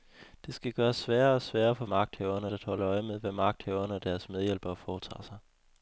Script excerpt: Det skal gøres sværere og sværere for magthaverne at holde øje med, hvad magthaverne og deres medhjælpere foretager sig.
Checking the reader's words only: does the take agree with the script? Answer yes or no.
yes